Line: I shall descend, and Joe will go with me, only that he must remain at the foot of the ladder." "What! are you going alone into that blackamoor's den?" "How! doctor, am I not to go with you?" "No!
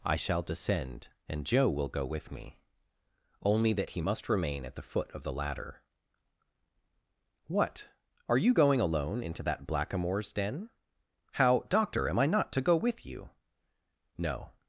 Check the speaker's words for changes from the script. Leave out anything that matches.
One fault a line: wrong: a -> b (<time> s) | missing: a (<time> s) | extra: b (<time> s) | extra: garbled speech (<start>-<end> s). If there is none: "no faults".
no faults